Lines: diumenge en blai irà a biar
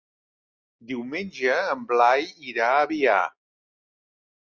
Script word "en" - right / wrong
right